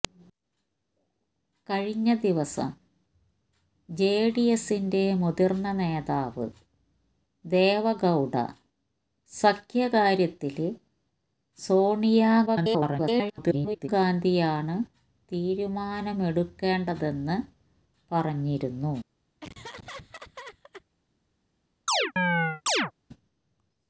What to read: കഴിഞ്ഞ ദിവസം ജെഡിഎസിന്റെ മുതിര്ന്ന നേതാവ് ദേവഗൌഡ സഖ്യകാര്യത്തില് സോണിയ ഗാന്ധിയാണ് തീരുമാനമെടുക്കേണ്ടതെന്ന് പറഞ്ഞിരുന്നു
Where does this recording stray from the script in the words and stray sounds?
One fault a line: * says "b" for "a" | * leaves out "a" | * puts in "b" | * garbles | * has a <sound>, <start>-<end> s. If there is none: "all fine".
* garbles
* has a laugh, 19.4-20.8 s
* has a chirp, 21.9-22.9 s